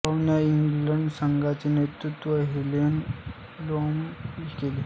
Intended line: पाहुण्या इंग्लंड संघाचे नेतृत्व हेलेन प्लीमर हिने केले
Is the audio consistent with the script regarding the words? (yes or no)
no